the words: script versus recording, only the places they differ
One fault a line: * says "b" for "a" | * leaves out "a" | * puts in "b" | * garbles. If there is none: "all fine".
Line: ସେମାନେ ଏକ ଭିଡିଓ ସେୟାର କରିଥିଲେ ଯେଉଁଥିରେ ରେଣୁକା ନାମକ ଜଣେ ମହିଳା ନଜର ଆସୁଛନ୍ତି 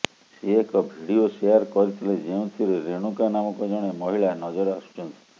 * says "ସେ" for "ସେମାନେ"